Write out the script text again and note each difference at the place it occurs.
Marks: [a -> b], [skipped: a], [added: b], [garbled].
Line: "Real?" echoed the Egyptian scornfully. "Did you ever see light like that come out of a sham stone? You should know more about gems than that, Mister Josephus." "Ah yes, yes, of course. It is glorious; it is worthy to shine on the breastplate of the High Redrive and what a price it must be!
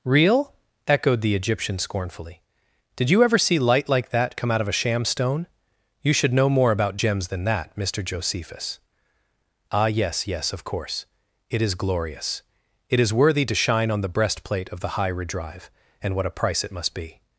"Real?" echoed the Egyptian scornfully. "Did you ever see light like that come out of a sham stone? You should know more about gems than that, Mister Josephus." "Ah yes, yes, of course. It is glorious; it is worthy to shine on the breastplate of the High Redrive and what a price it must be!